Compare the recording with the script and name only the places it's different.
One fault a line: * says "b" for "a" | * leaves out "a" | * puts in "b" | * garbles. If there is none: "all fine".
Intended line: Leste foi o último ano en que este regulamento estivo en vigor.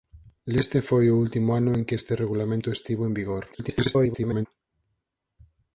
* garbles